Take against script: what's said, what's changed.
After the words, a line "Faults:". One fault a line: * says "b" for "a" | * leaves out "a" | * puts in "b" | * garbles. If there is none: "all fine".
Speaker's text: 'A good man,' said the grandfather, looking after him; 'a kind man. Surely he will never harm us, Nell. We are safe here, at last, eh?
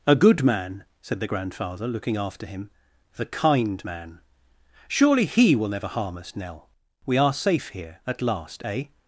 'A good man,' said the grandfather, looking after him; 'the kind man. Surely he will never harm us, Nell. We are safe here, at last, eh?
Faults:
* says "the" for "a"